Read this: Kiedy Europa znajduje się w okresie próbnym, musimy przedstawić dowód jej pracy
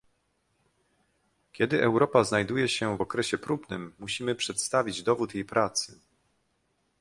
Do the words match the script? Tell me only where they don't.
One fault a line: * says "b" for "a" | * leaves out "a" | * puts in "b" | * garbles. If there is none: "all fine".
all fine